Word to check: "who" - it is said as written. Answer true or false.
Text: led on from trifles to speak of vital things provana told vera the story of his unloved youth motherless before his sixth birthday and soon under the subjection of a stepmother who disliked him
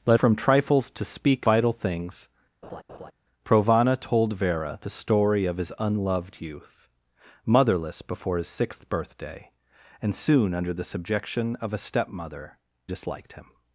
false